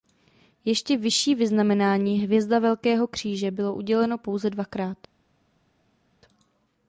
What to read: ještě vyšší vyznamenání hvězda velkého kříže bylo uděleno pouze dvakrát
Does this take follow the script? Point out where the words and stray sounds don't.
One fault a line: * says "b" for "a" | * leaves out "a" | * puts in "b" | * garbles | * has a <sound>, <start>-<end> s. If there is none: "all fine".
all fine